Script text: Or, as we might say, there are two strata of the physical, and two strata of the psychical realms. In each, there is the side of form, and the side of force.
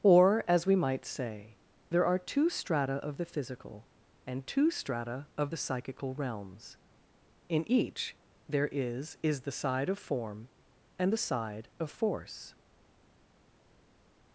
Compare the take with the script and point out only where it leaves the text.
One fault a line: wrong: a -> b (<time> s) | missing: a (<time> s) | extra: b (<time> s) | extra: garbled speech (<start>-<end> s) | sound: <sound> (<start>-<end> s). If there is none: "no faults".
extra: is (9.2 s)